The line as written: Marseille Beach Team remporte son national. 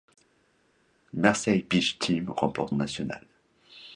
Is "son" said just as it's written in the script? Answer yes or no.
no